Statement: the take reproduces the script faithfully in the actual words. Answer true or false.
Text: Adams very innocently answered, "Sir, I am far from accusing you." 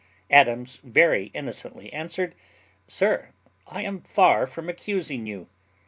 true